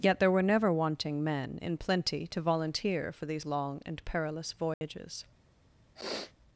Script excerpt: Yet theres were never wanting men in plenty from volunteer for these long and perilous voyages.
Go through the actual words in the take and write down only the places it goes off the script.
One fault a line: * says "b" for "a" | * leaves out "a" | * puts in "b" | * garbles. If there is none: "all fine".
* says "there" for "theres"
* says "to" for "from"